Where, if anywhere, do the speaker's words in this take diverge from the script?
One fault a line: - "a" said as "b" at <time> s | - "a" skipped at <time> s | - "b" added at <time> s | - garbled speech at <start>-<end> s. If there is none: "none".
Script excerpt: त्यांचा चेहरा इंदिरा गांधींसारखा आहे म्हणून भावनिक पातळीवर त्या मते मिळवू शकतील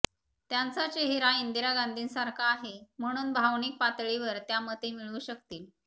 none